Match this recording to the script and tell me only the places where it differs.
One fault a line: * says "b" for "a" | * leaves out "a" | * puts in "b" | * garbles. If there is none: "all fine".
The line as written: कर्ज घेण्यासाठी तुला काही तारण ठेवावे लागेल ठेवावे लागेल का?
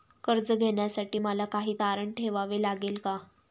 * says "मला" for "तुला"
* leaves out "ठेवावे लागेल"